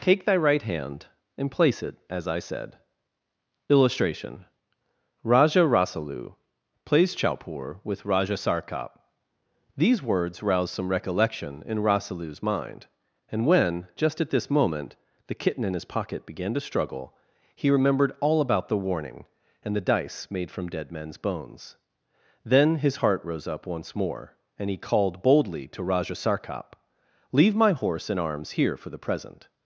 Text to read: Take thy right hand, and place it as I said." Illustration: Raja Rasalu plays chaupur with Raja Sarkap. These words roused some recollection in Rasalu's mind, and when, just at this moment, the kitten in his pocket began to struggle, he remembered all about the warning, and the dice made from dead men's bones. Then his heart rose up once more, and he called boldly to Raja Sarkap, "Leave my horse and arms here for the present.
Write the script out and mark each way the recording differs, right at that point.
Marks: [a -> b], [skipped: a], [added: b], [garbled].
Take thy right hand, and place it as I said." Illustration: Raja Rasalu plays chaupur with Raja Sarkap. These words [roused -> rouse] some recollection in Rasalu's mind, and when, just at this moment, the kitten in his pocket began to struggle, he remembered all about the warning, and the dice made from dead men's bones. Then his heart rose up once more, and he called boldly to Raja Sarkap, "Leave my horse and arms here for the present.